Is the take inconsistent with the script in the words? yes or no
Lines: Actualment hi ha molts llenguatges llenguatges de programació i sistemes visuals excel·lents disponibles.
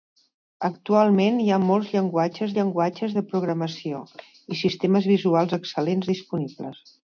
no